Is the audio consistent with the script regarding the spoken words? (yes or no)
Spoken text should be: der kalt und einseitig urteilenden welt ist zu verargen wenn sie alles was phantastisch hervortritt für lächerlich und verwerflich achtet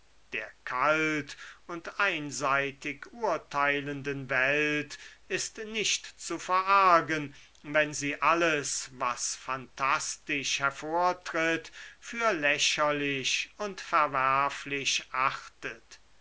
no